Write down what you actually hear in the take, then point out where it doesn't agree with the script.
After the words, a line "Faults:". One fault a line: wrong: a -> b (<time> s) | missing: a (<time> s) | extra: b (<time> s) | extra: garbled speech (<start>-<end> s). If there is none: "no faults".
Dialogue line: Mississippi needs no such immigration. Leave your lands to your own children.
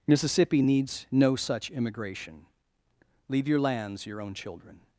Mississippi needs no such immigration. Leave your lands your own children.
Faults:
missing: to (4.1 s)